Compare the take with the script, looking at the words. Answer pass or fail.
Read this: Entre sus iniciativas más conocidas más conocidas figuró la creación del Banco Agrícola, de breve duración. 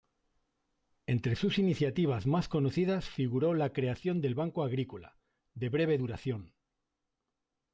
fail